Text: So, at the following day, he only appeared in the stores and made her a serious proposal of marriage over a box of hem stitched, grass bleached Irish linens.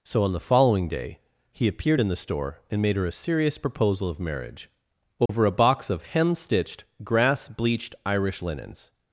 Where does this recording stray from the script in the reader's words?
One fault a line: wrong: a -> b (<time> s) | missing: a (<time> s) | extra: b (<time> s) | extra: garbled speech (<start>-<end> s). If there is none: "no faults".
wrong: at -> on (0.2 s)
missing: only (1.7 s)
wrong: stores -> store (2.1 s)